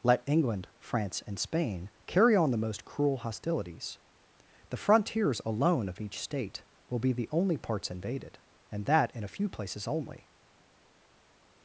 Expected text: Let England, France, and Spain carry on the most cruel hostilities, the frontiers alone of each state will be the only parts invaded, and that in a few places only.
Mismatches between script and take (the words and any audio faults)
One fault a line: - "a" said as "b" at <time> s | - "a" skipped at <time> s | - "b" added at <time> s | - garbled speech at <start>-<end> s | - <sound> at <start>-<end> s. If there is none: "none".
none